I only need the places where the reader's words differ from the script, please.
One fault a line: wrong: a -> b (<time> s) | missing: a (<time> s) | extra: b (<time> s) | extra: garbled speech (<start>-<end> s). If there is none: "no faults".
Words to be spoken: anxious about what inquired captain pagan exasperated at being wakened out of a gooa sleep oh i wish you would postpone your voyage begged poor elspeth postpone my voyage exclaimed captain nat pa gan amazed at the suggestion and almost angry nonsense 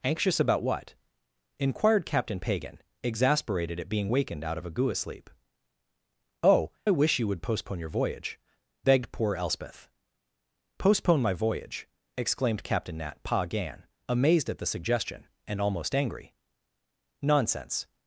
no faults